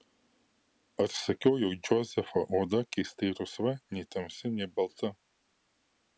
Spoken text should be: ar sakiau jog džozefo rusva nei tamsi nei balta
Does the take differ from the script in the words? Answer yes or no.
yes